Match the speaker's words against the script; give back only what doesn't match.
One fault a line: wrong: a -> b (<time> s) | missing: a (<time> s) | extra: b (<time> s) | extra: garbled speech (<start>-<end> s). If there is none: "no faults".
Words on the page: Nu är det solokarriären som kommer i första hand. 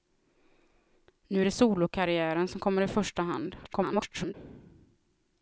extra: garbled speech (3.6-4.3 s)